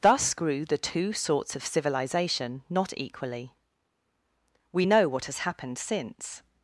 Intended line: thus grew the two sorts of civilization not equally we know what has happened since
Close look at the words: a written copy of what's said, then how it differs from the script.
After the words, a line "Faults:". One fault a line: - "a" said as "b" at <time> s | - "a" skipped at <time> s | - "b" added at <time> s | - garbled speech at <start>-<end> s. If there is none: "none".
thus grew the two sorts of civilization not equally we know what has happened since
Faults:
none